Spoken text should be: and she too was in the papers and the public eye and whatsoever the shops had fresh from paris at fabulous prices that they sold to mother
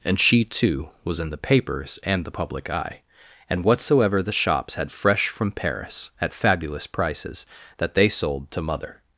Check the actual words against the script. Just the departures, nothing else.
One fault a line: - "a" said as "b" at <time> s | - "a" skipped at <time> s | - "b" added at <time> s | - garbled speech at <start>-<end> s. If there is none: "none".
none